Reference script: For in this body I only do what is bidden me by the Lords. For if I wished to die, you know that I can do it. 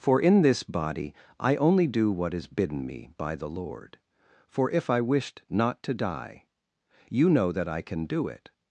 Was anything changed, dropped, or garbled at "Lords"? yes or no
yes